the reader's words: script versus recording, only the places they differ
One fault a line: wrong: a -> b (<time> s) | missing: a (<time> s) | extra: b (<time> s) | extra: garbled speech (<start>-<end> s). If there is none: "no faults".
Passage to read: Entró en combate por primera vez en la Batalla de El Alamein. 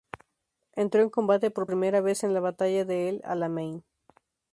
no faults